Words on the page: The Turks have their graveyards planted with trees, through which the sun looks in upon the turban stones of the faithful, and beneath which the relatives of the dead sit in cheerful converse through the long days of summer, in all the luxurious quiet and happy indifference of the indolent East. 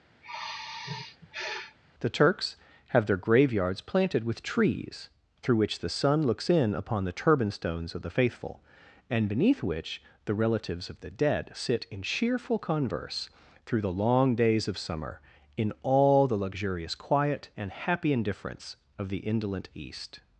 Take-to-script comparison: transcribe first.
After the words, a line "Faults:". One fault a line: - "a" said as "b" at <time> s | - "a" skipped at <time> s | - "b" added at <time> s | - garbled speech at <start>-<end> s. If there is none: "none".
The Turks have their graveyards planted with trees, through which the sun looks in upon the turban stones of the faithful, and beneath which the relatives of the dead sit in cheerful converse through the long days of summer, in all the luxurious quiet and happy indifference of the indolent East.
Faults:
none